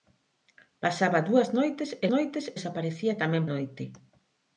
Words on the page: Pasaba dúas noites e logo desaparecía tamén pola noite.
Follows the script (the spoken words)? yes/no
no